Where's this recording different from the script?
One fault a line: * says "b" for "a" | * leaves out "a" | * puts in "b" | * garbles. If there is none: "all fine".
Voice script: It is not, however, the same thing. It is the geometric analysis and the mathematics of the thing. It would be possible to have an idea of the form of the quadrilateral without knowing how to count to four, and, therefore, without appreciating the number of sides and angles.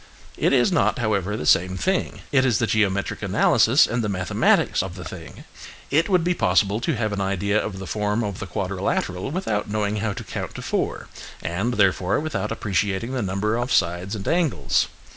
all fine